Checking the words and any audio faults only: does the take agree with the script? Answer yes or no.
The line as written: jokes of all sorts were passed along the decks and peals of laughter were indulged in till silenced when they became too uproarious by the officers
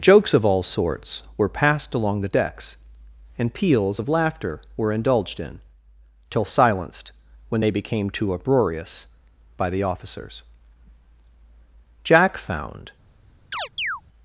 no